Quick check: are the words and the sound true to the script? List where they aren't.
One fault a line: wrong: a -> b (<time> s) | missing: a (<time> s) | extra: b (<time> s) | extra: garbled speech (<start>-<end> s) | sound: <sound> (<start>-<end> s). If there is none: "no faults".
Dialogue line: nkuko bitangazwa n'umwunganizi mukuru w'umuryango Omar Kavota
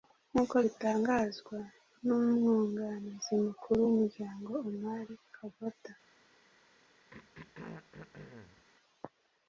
sound: throat clearing (7.1-8.6 s)